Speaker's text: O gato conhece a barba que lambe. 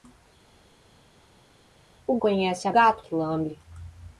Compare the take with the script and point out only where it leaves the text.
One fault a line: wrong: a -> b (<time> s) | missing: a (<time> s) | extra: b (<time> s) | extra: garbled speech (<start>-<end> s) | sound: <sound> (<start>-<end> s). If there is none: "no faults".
missing: gato (2.2 s)
wrong: barba -> gato (2.7 s)